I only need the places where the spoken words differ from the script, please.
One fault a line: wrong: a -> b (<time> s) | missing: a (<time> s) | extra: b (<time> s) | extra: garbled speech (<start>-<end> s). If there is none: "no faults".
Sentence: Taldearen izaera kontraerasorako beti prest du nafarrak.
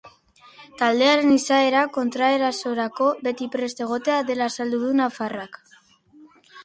extra: egotea dela azaldu (3.9 s)